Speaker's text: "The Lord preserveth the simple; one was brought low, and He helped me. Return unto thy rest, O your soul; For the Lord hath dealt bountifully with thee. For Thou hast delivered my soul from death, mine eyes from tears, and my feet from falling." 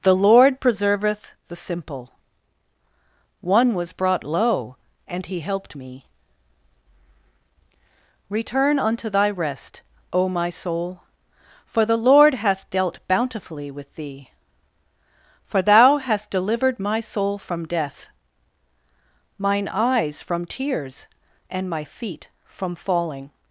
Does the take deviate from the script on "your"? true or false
true